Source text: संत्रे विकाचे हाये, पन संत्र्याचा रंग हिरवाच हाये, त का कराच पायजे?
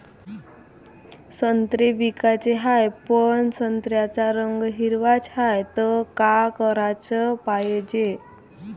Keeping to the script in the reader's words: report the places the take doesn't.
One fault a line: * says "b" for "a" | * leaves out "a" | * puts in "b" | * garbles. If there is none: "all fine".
all fine